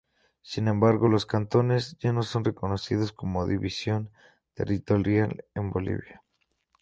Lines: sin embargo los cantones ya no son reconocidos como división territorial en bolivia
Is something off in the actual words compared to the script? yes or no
no